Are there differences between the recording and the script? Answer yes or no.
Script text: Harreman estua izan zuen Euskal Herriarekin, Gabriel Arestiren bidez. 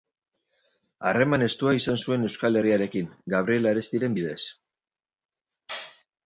no